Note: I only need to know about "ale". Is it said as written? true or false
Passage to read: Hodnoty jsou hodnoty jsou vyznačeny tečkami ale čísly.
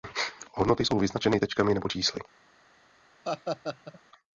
false